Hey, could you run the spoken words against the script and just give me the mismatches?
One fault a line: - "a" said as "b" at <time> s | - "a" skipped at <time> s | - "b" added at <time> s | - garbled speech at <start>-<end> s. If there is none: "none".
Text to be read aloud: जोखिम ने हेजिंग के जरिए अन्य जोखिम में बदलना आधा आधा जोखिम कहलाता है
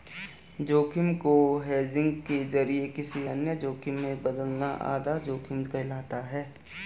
- "ने" said as "को" at 1.1 s
- "किसी" added at 2.9 s
- "आधा" skipped at 5.2 s